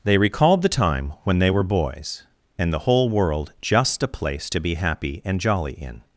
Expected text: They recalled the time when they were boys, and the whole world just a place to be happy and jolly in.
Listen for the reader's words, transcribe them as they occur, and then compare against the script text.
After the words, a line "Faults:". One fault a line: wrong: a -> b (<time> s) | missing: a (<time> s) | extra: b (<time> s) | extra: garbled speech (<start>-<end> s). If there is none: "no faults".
They recalled the time when they were boys, and the whole world just a place to be happy and jolly in.
Faults:
no faults